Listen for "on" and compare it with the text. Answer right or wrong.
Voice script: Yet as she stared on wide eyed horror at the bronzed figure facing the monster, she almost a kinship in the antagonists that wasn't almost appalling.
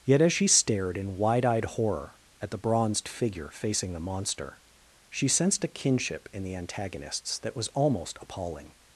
wrong